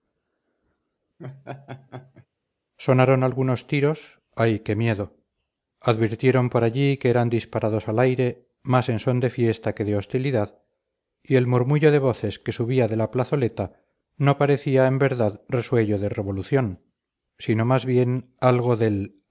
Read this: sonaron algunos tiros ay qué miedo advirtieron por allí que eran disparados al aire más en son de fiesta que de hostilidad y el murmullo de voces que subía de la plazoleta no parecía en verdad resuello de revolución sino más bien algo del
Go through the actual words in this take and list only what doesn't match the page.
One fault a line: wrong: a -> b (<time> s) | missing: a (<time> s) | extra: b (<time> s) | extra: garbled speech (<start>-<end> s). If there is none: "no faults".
no faults